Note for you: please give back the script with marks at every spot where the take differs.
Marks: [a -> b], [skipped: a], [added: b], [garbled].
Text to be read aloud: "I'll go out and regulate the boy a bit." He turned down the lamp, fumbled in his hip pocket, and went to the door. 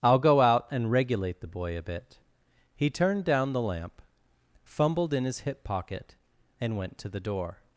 "I'll go out and regulate the boy a bit." He turned down the lamp, fumbled in his hip pocket, and went to the door.